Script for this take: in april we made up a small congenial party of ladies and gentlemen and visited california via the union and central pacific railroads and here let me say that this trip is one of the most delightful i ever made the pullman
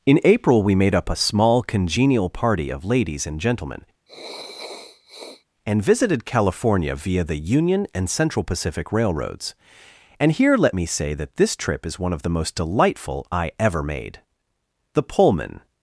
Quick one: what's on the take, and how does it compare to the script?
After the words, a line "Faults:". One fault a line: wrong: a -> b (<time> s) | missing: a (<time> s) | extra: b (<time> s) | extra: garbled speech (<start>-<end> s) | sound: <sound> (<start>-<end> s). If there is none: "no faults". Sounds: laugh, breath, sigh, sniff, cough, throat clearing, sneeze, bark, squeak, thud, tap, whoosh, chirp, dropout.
in april we made up a small congenial party of ladies and gentlemen and visited california via the union and central pacific railroads and here let me say that this trip is one of the most delightful i ever made the pullman
Faults:
sound: sniff (4.1-5.4 s)